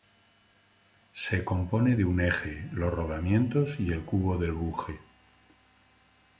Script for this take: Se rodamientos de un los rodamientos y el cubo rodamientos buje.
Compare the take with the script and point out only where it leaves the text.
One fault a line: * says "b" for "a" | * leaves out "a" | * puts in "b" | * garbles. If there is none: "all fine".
* says "compone" for "rodamientos"
* puts in "eje"
* says "del" for "rodamientos"